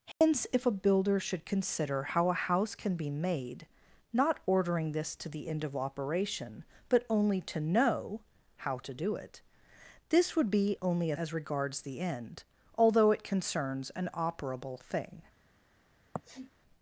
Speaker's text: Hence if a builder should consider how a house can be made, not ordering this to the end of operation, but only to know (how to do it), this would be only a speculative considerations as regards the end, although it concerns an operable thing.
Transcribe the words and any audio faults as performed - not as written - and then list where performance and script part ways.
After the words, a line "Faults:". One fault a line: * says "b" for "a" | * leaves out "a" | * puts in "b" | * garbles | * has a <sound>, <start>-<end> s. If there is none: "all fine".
Hence if a builder should consider how a house can be made, not ordering this to the end of operation, but only to know (how to do it), this would be only a as regards the end, although it concerns an operable thing.
Faults:
* has a dropout, 0.1-0.2 s
* leaves out "speculative considerations"
* has a sniff, 16.1-16.5 s